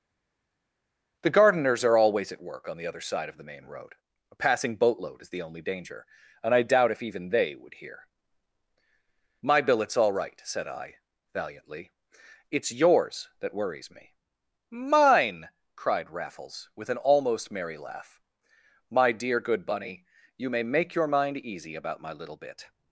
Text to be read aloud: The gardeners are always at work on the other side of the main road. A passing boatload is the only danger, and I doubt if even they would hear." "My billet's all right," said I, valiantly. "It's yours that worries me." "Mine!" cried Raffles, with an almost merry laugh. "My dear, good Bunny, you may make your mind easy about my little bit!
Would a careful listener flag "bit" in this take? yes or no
no